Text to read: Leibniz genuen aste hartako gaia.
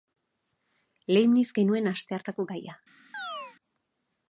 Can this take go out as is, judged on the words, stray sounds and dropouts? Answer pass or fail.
fail